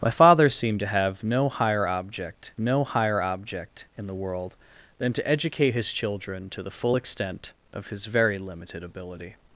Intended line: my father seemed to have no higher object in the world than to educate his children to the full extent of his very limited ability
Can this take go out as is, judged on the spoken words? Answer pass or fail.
fail